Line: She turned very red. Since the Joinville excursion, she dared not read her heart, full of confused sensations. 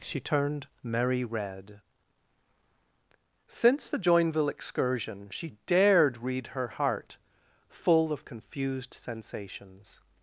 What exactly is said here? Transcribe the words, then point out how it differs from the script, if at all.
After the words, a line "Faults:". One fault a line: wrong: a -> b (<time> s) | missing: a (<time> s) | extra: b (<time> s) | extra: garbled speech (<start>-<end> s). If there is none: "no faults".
She turned merry red. Since the Joinville excursion, she dared read her heart, full of confused sensations.
Faults:
wrong: very -> merry (0.8 s)
missing: not (6.2 s)